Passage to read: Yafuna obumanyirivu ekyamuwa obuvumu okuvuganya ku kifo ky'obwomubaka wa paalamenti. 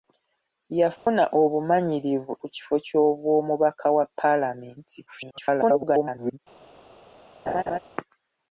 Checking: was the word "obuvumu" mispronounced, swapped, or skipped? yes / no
yes